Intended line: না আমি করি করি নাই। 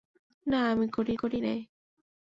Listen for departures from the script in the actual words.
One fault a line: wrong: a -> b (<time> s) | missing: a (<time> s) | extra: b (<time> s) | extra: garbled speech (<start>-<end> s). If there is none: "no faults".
no faults